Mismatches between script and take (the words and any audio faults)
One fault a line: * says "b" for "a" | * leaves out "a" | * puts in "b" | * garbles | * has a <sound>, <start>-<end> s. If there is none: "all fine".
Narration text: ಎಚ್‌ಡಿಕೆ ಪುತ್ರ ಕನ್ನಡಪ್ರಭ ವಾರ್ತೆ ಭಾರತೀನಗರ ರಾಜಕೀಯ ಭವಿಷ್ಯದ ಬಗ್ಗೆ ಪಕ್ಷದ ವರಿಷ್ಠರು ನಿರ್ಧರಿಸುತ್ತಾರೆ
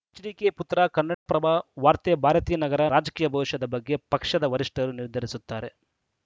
* has a dropout, 1.1-1.3 s